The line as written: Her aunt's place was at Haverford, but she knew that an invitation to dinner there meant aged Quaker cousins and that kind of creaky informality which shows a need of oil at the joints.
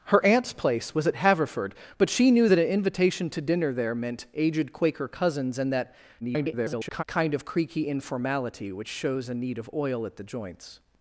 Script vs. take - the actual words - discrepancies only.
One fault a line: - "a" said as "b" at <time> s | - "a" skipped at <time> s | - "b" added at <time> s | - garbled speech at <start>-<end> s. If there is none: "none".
- garbled speech at 6.2-7.0 s